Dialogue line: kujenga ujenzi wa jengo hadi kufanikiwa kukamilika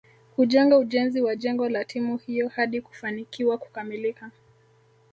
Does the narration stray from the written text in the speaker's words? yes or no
yes